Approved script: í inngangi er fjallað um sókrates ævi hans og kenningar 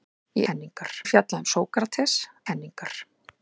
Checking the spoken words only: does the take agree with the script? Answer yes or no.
no